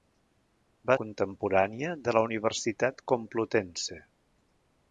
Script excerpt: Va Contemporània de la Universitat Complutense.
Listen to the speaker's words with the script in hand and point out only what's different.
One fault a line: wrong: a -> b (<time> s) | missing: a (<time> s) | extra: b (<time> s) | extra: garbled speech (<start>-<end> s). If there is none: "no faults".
no faults